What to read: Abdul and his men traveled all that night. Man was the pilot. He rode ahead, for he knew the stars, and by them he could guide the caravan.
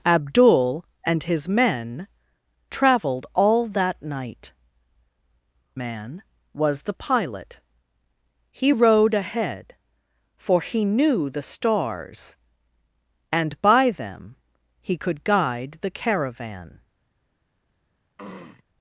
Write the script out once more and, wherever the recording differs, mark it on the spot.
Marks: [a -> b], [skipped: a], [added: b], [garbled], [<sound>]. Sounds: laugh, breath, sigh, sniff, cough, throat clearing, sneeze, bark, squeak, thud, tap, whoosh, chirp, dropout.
Abdul and his men traveled all that night. Man was the pilot. He rode ahead, for he knew the stars, and by them he could guide the caravan. [throat clearing]